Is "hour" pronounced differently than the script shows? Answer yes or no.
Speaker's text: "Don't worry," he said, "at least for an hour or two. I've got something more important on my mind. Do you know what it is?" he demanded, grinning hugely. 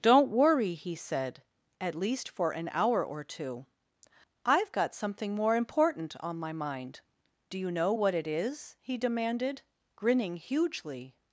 no